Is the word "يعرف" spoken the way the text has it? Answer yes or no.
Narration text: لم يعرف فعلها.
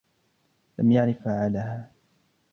yes